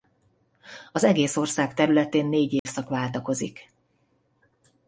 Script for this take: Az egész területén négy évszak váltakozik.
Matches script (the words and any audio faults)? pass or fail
fail